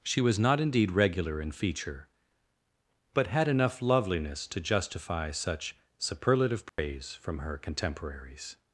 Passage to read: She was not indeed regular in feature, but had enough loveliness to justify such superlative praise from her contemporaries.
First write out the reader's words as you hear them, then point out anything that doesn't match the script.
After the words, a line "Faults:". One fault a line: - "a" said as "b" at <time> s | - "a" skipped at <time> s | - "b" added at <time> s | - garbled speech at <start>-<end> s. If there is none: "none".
She was not indeed regular in feature, but had enough loveliness to justify such superlative praise from her contemporaries.
Faults:
none